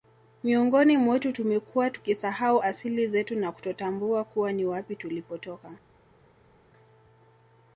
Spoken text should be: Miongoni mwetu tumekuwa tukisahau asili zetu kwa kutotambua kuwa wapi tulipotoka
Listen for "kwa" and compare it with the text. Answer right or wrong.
wrong